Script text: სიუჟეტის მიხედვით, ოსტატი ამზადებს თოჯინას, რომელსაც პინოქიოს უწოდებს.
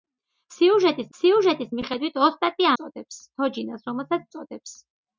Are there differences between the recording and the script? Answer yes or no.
yes